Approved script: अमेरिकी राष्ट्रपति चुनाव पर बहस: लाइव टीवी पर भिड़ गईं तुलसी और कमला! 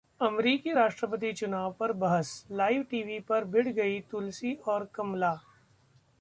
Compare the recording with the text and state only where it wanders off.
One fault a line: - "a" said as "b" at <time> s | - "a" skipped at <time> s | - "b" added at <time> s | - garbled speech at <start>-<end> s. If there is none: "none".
none